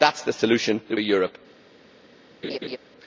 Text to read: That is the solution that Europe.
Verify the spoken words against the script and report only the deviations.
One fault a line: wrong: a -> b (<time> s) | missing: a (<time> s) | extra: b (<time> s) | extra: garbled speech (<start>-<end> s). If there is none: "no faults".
no faults